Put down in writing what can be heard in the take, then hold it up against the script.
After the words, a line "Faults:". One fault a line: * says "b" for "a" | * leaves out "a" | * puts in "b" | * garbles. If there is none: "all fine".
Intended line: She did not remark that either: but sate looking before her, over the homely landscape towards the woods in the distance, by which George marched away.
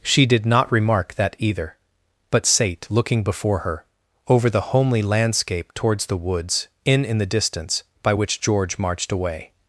She did not remark that either: but sate looking before her, over the homely landscape towards the woods in in the distance, by which George marched away.
Faults:
* puts in "in"